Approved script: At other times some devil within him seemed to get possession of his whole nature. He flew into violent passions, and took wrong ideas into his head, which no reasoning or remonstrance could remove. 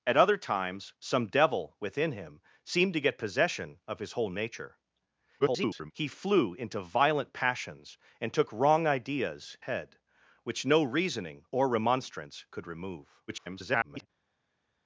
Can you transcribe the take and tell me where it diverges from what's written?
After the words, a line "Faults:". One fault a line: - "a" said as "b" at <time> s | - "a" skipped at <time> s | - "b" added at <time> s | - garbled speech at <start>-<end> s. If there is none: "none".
At other times some devil within him seemed to get possession of his whole nature. [garbled] He flew into violent passions, and took wrong ideas head, which no reasoning or remonstrance could remove. [garbled]
Faults:
- garbled speech at 5.4-5.9 s
- "into his" skipped at 9.6 s
- garbled speech at 13.3-14.1 s